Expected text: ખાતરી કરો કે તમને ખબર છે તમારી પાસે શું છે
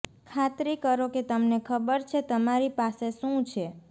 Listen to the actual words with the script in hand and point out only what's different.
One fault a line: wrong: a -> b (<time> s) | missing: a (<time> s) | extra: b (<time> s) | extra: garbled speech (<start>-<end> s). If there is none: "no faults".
no faults